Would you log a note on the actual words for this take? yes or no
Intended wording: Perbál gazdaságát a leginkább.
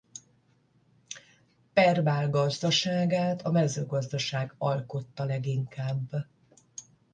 yes